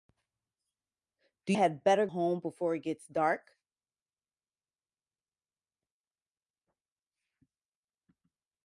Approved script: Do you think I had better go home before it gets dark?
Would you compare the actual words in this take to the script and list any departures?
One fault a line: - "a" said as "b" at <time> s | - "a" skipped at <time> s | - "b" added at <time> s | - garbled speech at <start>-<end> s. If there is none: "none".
- "you think I" skipped at 1.5 s
- "go" skipped at 2.1 s